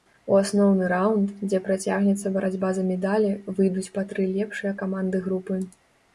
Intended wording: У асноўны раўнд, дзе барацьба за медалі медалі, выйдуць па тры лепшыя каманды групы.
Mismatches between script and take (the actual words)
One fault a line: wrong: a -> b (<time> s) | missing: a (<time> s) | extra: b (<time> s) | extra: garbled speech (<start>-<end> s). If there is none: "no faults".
extra: працягнецца (1.7 s)
missing: медалі (3.3 s)